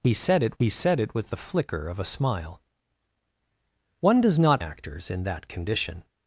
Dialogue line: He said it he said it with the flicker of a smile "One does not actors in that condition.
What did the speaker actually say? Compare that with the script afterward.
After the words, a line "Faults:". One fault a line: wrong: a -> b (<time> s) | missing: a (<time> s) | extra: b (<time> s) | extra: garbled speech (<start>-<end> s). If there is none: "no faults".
He said it he said it with the flicker of a smile "One does not actors in that condition.
Faults:
no faults